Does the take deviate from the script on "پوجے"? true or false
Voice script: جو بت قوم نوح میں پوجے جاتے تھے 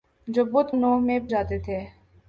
true